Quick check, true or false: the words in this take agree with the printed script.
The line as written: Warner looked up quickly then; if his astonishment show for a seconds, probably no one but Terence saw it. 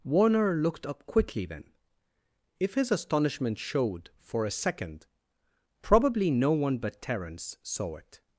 false